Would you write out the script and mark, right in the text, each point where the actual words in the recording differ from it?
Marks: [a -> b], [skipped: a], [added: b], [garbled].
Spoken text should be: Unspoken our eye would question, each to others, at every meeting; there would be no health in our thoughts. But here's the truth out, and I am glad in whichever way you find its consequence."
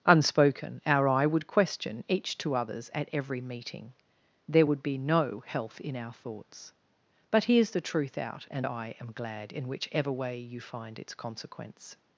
Unspoken our eye would question, each to others, at every meeting; there would be no health in our thoughts. But here's the truth out, and I am glad in whichever way you find its consequence."